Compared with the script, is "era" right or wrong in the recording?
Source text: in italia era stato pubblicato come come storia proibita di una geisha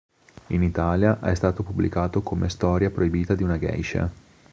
wrong